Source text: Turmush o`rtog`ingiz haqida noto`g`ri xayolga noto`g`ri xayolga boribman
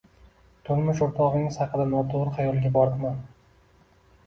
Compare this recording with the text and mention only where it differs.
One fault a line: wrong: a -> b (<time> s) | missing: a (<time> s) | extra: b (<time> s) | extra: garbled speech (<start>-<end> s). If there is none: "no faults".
missing: noto`g`ri xayolga (2.7 s)